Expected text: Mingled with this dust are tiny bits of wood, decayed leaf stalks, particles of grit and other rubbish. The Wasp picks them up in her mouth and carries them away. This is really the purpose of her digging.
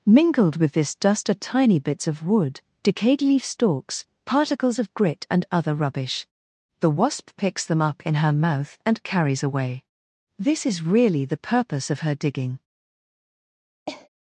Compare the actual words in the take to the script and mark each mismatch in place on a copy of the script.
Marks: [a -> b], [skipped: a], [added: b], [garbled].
Mingled with this dust are tiny bits of wood, decayed leaf stalks, particles of grit and other rubbish. The Wasp picks them up in her mouth and carries [skipped: them] away. This is really the purpose of her digging.